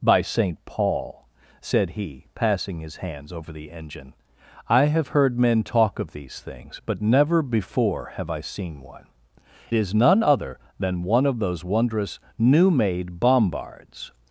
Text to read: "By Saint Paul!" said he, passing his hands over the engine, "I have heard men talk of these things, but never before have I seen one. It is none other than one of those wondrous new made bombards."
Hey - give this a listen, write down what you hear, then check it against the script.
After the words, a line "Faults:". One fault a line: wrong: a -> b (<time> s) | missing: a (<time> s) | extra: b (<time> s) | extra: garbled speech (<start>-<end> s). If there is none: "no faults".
"By Saint Paul!" said he, passing his hands over the engine, "I have heard men talk of these things, but never before have I seen one. Is none other than one of those wondrous new made bombards."
Faults:
missing: It (9.1 s)